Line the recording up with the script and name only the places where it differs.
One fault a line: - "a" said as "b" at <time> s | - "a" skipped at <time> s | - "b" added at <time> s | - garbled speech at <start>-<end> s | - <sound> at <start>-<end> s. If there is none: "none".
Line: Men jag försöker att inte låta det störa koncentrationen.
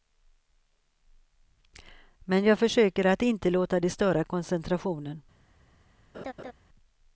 - laugh at 6.1-6.5 s